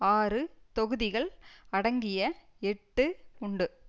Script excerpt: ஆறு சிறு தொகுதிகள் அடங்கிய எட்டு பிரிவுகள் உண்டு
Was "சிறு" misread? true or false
true